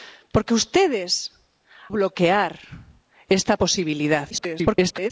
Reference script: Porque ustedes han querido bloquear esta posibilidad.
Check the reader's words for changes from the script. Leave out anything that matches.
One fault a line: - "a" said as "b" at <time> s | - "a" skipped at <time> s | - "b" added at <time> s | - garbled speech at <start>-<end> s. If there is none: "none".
- "han querido" skipped at 1.1 s
- garbled speech at 4.3-5.1 s